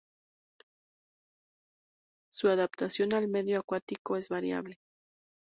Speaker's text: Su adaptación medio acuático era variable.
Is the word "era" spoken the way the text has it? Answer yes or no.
no